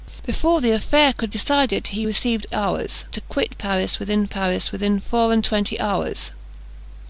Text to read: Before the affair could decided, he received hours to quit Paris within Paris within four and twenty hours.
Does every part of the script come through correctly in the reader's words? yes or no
yes